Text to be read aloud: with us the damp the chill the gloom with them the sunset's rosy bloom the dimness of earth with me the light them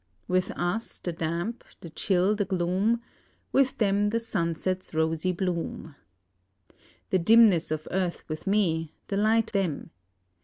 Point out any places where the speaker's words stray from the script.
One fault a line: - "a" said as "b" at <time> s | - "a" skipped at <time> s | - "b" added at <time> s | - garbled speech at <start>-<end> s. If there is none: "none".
none